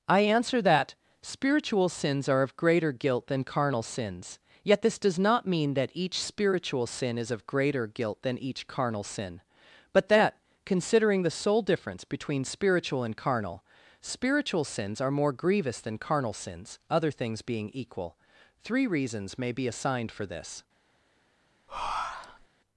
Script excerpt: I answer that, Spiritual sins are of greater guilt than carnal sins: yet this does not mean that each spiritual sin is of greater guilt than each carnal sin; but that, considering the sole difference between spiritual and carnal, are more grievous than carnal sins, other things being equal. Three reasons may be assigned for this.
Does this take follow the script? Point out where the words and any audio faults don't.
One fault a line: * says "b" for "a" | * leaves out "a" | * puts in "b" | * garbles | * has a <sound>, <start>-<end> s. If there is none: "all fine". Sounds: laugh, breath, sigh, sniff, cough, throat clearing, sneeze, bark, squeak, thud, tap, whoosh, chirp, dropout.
* puts in "spiritual sins"
* has a breath, 21.7-22.5 s